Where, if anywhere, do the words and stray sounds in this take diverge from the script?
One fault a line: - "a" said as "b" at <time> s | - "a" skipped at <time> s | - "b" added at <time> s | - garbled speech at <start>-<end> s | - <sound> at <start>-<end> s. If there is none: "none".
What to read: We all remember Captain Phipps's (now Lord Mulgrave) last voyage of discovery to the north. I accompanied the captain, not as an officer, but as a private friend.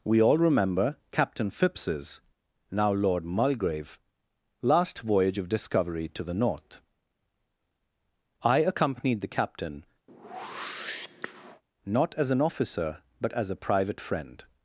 - whoosh at 10.1-11.6 s